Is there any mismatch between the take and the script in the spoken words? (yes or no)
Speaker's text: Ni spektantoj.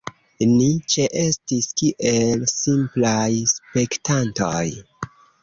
yes